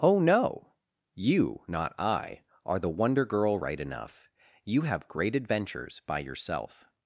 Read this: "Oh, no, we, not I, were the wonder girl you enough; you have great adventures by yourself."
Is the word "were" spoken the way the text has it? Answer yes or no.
no